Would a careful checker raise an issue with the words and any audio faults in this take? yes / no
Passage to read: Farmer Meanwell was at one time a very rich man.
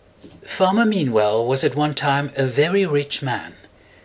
no